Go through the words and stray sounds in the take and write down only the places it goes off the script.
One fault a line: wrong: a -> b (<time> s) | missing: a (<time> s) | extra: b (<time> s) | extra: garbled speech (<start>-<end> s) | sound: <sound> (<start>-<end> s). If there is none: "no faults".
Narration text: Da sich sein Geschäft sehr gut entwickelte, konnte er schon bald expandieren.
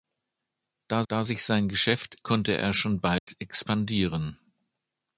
extra: da (1.1 s)
missing: sehr gut entwickelte (2.2 s)
sound: dropout (3.2-3.3 s)